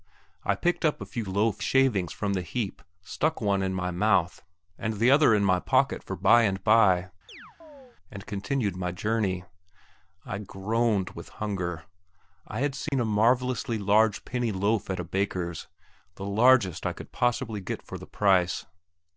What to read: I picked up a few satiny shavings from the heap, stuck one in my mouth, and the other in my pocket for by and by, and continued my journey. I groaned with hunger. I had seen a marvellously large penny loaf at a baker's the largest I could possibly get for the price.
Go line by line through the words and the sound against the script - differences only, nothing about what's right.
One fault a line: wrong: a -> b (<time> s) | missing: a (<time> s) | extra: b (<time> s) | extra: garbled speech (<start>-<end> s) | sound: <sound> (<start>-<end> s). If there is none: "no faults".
wrong: satiny -> loaf (1.2 s)
sound: chirp (7.3-8.0 s)
sound: dropout (12.9-12.9 s)